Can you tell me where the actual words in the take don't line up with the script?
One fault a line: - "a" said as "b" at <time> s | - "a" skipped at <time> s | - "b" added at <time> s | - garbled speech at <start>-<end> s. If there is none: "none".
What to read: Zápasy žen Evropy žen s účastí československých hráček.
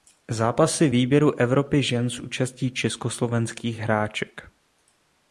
- "žen" said as "výběru" at 0.9 s